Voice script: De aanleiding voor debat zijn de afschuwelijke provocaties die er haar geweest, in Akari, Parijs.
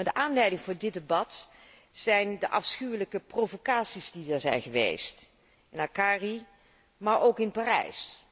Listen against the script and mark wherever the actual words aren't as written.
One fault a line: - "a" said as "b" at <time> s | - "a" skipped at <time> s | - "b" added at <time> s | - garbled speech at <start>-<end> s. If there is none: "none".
- "dit" added at 0.8 s
- "haar" said as "zijn" at 4.4 s
- "maar ook in" added at 7.0 s